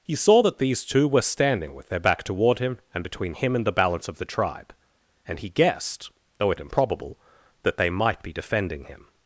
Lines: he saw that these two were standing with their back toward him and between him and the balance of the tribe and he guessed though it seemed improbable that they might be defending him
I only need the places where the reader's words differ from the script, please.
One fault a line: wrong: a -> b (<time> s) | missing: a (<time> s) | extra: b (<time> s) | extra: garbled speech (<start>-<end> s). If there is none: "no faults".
missing: seemed (6.6 s)